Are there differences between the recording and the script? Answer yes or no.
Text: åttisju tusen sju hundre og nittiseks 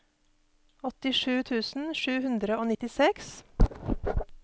no